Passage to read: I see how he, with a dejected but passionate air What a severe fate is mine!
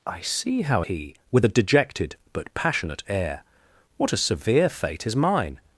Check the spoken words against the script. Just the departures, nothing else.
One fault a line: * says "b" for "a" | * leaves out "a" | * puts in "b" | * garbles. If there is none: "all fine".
all fine